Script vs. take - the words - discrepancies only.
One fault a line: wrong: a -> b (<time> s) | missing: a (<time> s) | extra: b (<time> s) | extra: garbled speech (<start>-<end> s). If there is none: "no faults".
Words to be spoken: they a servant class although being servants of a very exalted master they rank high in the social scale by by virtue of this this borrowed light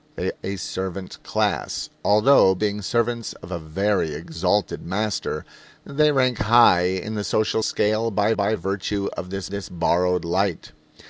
no faults